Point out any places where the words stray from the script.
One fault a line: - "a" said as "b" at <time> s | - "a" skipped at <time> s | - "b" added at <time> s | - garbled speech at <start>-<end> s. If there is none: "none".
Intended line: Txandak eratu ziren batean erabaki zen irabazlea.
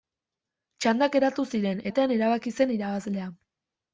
none